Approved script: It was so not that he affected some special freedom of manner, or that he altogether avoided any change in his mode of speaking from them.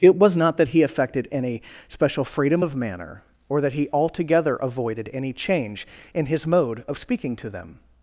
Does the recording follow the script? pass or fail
fail